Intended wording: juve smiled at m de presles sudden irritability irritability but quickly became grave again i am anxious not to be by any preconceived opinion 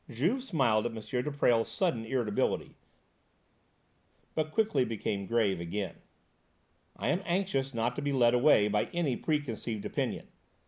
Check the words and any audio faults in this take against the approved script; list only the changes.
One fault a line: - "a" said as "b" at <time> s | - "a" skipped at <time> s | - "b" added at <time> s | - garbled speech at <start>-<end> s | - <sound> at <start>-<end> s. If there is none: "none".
- "irritability" skipped at 2.8 s
- "led away" added at 8.1 s